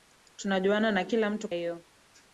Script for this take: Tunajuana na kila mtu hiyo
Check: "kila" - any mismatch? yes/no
no